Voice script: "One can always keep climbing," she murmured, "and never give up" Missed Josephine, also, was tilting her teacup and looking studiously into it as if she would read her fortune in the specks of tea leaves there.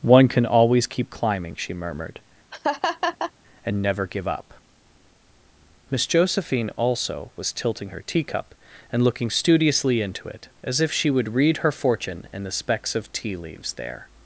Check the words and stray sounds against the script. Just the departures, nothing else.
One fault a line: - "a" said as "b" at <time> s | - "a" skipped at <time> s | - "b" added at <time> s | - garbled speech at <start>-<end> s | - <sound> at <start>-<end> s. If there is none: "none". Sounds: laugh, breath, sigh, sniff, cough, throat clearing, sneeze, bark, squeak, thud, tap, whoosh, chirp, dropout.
- laugh at 2.5-3.3 s
- "Missed" said as "Miss" at 5.9 s